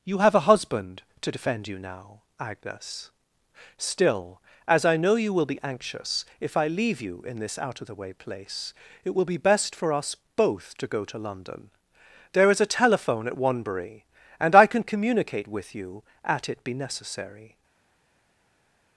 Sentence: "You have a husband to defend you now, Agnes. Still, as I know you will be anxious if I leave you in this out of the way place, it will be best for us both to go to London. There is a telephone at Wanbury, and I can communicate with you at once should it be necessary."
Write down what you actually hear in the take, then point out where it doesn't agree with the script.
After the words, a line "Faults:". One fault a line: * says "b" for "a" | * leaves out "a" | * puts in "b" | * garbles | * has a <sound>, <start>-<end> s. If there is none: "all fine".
"You have a husband to defend you now, Agnes. Still, as I know you will be anxious if I leave you in this out of the way place, it will be best for us both to go to London. There is a telephone at Wanbury, and I can communicate with you at it be necessary."
Faults:
* leaves out "once should"